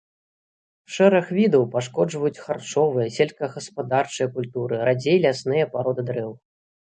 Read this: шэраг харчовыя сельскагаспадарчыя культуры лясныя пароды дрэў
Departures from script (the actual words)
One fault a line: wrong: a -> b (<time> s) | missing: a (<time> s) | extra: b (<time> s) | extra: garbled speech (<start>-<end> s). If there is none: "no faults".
extra: відаў пашкоджваюць (1.4 s)
extra: радзей (4.9 s)